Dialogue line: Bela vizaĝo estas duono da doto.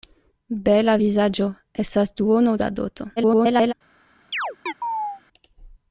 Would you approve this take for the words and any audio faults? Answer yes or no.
no